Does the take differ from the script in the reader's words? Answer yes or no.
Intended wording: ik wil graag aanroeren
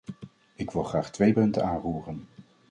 yes